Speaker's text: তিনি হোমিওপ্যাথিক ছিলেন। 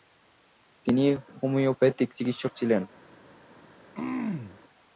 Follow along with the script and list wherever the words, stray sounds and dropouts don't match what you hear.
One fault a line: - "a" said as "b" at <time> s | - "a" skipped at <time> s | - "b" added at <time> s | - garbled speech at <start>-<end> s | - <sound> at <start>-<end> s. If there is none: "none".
- "চিকিৎসক" added at 2.2 s
- throat clearing at 3.9-4.6 s